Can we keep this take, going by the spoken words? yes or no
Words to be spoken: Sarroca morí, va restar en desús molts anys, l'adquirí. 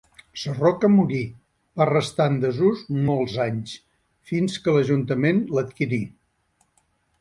no